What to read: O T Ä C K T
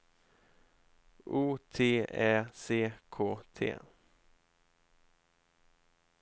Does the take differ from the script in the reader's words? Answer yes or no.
no